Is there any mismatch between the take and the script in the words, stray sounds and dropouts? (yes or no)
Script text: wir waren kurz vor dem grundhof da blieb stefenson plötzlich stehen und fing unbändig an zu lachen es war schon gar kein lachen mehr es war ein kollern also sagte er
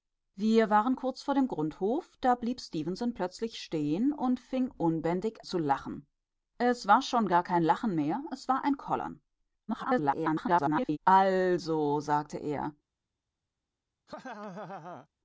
yes